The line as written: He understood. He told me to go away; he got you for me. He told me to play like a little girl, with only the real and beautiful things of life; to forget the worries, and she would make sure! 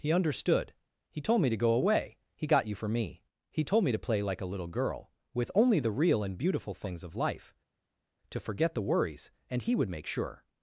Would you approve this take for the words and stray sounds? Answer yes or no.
no